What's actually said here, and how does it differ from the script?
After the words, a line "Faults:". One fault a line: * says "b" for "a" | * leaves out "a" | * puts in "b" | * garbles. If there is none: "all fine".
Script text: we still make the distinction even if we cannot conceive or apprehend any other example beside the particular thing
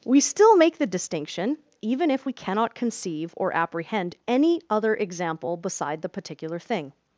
we still make the distinction even if we cannot conceive or apprehend any other example beside the particular thing
Faults:
all fine